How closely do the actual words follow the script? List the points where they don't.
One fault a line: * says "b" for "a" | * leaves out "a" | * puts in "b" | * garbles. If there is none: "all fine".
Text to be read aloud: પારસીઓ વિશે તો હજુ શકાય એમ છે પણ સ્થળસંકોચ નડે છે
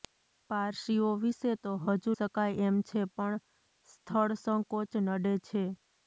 all fine